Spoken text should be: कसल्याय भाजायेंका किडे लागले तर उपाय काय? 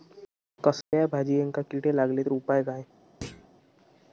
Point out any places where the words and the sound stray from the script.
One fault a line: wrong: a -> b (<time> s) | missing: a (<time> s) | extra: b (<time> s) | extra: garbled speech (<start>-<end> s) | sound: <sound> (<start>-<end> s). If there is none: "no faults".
sound: dropout (0.8-0.9 s)
sound: thud (3.2-3.5 s)